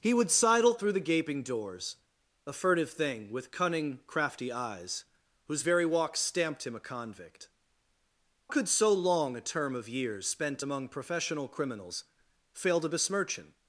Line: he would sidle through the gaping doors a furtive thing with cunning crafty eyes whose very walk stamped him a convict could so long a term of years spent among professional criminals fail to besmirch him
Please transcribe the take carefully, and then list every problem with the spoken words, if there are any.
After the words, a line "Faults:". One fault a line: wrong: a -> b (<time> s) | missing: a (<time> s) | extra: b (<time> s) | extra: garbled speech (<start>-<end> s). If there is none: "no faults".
he would sidle through the gaping doors a furtive thing with cunning crafty eyes whose very walk stamped him a convict could so long a term of years spent among professional criminals fail to besmirch him
Faults:
no faults